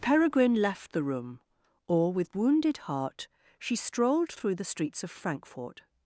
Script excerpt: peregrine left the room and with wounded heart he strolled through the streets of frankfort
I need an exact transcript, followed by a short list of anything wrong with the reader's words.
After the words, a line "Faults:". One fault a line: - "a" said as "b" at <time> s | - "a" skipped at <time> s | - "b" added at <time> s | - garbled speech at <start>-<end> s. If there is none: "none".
peregrine left the room or with wounded heart she strolled through the streets of frankfort
Faults:
- "and" said as "or" at 1.9 s
- "he" said as "she" at 3.6 s